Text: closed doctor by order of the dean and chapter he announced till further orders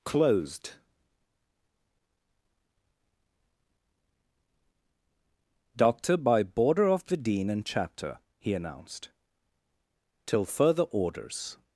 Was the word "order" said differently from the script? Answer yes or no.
yes